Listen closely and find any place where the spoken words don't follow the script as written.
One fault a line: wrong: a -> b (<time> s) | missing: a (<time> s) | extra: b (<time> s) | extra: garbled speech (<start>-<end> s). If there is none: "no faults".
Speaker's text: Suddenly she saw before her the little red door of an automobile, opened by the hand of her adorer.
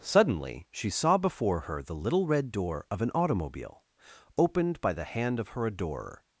no faults